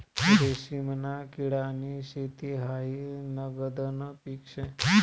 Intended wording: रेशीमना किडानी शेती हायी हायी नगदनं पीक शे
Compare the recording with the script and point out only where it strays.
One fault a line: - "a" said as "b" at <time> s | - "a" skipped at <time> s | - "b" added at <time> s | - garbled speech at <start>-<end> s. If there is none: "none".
- "हायी" skipped at 3.0 s